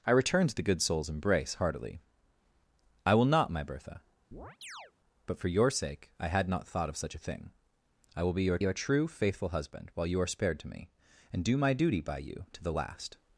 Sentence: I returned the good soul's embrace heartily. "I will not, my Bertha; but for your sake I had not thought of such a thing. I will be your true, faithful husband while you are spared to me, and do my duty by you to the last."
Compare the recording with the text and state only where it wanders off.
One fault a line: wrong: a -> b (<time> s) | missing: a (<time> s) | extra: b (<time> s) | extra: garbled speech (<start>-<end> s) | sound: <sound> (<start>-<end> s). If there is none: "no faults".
sound: chirp (4.3-4.9 s)
extra: your (8.6 s)